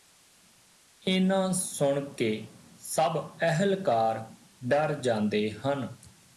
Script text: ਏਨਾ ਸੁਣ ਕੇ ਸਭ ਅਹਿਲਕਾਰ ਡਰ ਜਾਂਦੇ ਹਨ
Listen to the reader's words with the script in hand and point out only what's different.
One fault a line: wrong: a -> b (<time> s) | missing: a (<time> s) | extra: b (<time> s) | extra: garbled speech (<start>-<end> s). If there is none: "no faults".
no faults